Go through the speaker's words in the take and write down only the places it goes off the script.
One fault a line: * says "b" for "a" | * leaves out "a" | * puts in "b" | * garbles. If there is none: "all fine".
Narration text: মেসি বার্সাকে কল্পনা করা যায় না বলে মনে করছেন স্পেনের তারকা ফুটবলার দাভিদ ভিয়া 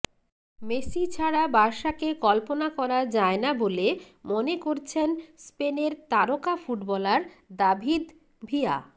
* puts in "ছাড়া"